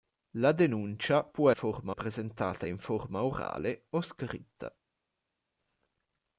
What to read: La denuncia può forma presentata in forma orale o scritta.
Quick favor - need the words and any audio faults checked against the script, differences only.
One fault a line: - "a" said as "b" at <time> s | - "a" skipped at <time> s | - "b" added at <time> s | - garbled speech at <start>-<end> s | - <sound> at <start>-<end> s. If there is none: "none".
none